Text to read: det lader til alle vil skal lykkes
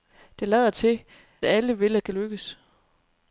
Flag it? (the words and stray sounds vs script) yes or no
no